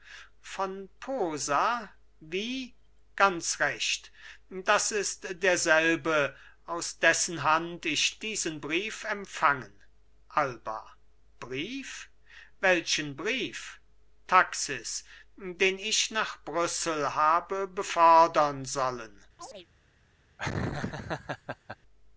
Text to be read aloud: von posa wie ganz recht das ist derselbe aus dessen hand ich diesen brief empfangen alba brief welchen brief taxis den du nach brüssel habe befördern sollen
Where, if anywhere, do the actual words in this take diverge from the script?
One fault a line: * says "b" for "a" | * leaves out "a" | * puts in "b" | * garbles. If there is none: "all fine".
* says "ich" for "du"